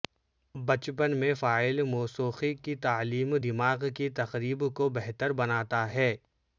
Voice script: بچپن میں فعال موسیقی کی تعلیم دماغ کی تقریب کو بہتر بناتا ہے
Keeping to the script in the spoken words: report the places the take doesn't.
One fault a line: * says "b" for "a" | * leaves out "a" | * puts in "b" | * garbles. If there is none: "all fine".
all fine